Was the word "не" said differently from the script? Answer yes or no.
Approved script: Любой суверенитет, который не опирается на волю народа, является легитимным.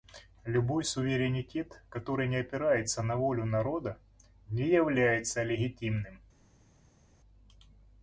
no